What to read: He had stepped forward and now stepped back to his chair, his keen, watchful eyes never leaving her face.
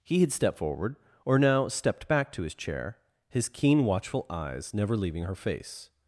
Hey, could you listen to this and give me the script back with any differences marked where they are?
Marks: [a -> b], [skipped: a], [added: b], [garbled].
He had stepped forward [and -> or] now stepped back to his chair, his keen, watchful eyes never leaving her face.